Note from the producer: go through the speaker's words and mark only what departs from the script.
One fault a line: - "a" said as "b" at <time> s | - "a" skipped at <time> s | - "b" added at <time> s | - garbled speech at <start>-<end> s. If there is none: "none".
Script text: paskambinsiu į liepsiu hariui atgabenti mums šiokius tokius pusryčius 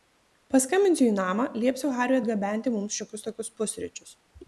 - "namą" added at 1.2 s